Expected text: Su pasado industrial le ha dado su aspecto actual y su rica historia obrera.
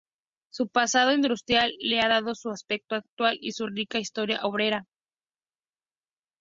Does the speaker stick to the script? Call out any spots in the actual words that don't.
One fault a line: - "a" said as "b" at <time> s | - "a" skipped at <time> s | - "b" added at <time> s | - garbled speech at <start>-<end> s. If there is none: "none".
none